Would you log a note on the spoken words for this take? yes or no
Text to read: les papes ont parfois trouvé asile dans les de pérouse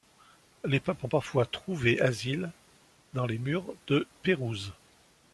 yes